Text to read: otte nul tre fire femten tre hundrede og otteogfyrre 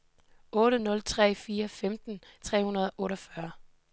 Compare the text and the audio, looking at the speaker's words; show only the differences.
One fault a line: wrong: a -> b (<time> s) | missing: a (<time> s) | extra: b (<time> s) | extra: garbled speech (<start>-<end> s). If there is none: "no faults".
no faults